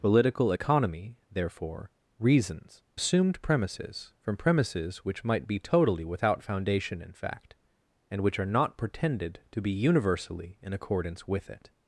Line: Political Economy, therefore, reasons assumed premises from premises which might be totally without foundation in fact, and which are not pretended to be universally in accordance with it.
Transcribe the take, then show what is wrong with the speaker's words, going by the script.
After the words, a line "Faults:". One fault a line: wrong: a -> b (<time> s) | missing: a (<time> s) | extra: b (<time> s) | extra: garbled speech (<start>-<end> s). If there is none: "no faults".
Political Economy, therefore, reasons assumed premises from premises which might be totally without foundation in fact, and which are not pretended to be universally in accordance with it.
Faults:
no faults